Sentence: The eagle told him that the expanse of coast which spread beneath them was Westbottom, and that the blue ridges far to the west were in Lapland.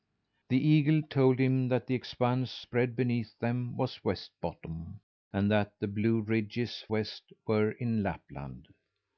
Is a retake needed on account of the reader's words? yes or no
yes